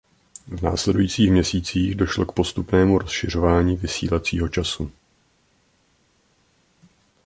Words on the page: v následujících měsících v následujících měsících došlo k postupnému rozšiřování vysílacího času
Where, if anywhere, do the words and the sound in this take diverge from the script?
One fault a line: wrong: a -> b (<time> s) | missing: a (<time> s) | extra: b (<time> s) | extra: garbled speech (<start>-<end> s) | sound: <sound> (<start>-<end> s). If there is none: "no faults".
missing: v následujících měsících (1.9 s)